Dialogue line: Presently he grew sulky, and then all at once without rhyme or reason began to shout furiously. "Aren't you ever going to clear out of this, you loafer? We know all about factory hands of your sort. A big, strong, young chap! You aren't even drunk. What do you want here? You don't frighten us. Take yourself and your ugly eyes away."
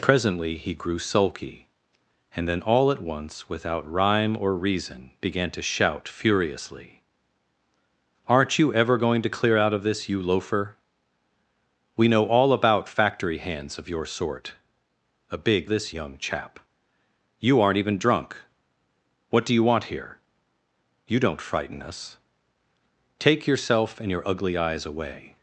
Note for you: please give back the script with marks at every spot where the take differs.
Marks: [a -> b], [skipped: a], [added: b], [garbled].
Presently he grew sulky, and then all at once without rhyme or reason began to shout furiously. "Aren't you ever going to clear out of this, you loafer? We know all about factory hands of your sort. A big, [strong, -> this] young chap! You aren't even drunk. What do you want here? You don't frighten us. Take yourself and your ugly eyes away."